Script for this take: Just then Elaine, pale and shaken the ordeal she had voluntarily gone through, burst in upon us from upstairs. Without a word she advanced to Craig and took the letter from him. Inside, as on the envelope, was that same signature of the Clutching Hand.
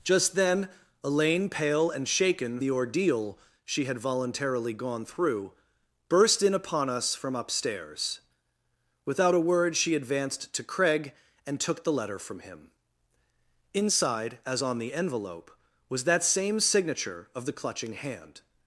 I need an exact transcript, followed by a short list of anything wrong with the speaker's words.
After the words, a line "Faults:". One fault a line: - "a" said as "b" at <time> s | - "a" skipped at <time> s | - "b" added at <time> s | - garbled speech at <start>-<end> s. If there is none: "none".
Just then Elaine, pale and shaken the ordeal she had voluntarily gone through, burst in upon us from upstairs. Without a word she advanced to Craig and took the letter from him. Inside, as on the envelope, was that same signature of the Clutching Hand.
Faults:
none